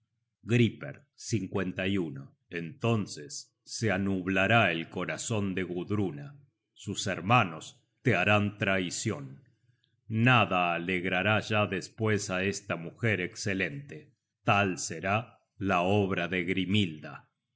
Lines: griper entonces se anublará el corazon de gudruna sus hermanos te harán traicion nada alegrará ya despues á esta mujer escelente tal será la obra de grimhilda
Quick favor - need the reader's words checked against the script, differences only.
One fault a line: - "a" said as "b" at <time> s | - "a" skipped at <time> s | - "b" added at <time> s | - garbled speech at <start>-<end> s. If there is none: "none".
none